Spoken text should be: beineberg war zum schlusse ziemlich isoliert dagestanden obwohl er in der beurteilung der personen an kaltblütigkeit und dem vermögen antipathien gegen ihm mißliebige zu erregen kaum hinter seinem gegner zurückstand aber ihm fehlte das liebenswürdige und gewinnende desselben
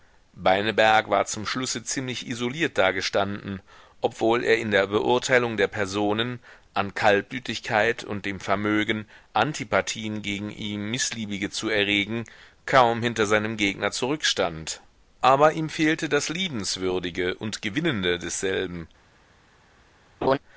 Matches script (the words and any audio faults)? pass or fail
fail